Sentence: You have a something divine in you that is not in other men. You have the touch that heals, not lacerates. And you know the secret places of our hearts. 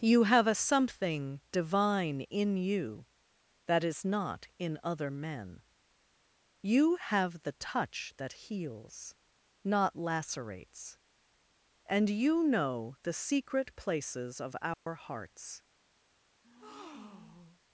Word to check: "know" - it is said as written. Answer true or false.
true